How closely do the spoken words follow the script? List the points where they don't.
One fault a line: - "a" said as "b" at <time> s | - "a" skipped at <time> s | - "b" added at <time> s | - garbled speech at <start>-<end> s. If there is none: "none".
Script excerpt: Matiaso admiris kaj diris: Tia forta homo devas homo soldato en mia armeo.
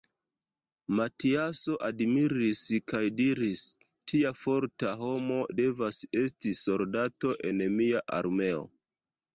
- "homo" said as "esti" at 6.3 s